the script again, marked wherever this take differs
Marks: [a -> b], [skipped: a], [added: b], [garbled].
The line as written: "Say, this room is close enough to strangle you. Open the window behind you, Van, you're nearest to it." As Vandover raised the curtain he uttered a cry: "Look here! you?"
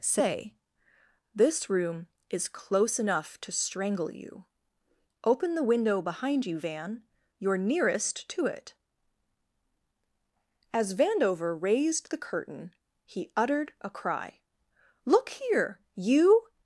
"Say, this room is close enough to strangle you. Open the window behind you, Van, you're nearest to it." As Vandover raised the curtain he uttered a cry: "Look here! you?"